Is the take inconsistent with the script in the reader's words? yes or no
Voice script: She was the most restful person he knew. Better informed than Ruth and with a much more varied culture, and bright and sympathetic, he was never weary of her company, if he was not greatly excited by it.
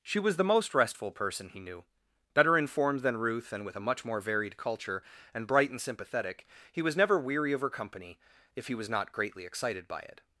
no